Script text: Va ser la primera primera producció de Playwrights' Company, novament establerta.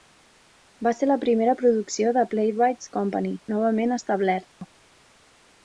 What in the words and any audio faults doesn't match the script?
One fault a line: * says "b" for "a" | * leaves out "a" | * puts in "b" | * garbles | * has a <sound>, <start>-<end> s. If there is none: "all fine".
* leaves out "primera"
* has a dropout, 4.5-4.6 s